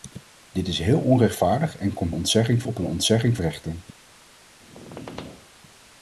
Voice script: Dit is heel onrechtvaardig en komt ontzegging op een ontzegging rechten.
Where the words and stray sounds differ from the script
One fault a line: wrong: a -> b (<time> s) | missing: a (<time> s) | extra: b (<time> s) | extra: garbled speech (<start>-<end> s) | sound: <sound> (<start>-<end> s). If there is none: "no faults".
sound: squeak (4.6-5.5 s)